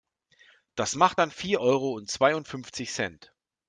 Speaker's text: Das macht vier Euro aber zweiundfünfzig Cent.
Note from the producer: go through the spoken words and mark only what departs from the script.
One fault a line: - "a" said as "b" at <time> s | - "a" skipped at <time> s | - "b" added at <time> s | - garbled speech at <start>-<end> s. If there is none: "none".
- "dann" added at 1.2 s
- "aber" said as "und" at 1.9 s